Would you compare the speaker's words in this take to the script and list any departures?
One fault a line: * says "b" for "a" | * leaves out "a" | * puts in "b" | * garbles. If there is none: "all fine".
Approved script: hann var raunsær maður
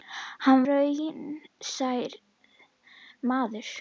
* leaves out "var"